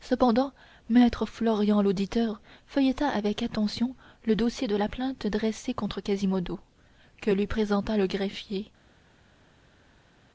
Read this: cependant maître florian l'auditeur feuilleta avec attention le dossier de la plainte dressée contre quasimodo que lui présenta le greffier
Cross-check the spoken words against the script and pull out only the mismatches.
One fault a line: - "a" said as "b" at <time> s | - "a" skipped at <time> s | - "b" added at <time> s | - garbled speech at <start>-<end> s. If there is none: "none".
none